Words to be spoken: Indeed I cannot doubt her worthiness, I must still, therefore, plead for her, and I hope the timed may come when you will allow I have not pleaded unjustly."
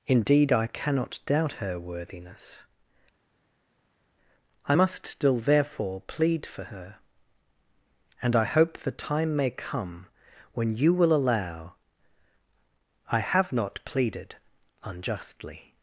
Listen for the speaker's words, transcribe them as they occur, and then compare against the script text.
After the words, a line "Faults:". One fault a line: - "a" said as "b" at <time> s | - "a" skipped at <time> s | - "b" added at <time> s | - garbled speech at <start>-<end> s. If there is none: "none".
Indeed I cannot doubt her worthiness, I must still, therefore, plead for her, and I hope the time may come when you will allow I have not pleaded unjustly."
Faults:
- "timed" said as "time" at 8.9 s